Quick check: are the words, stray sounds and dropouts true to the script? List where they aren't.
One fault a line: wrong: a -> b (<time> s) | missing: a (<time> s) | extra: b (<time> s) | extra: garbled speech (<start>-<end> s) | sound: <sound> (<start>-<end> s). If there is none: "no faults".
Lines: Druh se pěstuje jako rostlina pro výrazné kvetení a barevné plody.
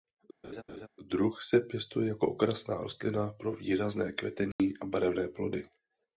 sound: laugh (0.4-0.9 s)
extra: okrasná (2.3 s)
sound: dropout (4.5-4.6 s)